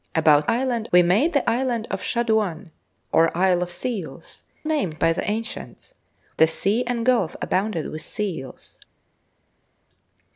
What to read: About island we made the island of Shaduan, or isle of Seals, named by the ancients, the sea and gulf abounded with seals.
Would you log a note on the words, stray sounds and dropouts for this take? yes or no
no